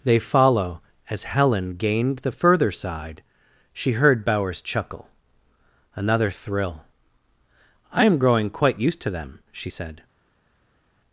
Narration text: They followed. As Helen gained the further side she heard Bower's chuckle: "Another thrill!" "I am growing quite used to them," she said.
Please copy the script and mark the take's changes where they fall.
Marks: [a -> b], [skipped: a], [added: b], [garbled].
They [followed. -> follow] As Helen gained the further side she heard Bower's chuckle: "Another thrill!" "I am growing quite used to them," she said.